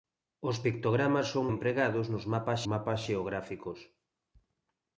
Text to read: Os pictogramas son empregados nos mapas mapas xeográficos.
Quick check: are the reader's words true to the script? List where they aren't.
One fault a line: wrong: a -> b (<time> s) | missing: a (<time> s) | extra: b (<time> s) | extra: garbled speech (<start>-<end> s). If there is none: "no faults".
no faults